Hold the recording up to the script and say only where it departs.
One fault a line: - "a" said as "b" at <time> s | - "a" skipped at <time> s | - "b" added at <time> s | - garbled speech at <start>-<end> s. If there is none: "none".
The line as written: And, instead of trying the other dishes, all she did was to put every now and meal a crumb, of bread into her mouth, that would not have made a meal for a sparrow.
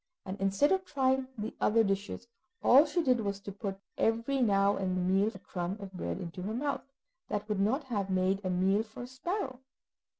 none